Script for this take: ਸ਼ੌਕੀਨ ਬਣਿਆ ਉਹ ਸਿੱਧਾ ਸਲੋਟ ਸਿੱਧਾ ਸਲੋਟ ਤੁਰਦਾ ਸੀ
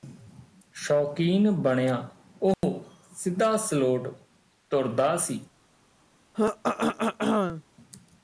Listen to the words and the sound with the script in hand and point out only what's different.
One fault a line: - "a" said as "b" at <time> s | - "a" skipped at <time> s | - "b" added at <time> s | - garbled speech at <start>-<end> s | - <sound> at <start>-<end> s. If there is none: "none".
- dropout at 2.5-2.6 s
- "ਸਿੱਧਾ ਸਲੋਟ" skipped at 4.1 s
- throat clearing at 6.3-7.6 s